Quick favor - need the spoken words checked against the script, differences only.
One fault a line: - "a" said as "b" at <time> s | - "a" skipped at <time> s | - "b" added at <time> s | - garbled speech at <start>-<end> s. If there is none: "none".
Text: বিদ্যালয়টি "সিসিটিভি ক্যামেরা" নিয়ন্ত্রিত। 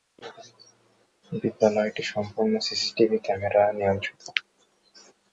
- "সম্পূর্ণ" added at 2.1 s